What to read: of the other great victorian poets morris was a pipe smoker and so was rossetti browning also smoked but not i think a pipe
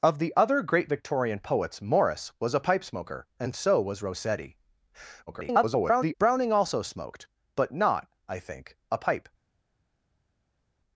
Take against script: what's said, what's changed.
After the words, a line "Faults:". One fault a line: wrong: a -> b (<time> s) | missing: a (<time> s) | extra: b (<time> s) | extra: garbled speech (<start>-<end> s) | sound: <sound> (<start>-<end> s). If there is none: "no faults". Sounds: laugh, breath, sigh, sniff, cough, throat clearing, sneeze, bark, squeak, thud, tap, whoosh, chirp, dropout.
of the other great victorian poets morris was a pipe smoker and so was rossetti [garbled] browning also smoked but not i think a pipe
Faults:
extra: garbled speech (5.3-6.1 s)